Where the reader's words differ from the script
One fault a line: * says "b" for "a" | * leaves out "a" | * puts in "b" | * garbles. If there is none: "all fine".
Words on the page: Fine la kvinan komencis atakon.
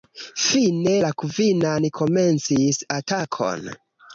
all fine